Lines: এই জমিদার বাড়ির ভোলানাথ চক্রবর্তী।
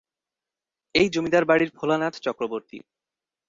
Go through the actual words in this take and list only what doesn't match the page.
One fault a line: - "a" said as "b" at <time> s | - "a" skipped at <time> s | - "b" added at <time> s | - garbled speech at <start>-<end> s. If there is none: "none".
none